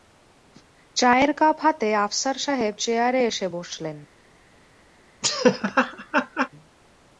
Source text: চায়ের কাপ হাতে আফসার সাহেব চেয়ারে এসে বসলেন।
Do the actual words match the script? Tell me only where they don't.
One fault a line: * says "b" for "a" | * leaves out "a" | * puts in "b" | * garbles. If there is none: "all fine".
all fine